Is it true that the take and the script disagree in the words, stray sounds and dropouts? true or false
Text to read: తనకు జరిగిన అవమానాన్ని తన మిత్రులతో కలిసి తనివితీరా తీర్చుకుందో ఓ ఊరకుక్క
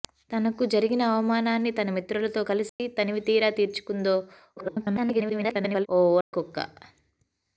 true